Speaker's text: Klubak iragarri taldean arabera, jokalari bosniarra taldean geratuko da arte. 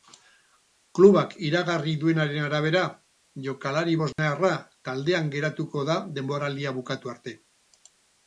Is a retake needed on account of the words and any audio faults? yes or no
yes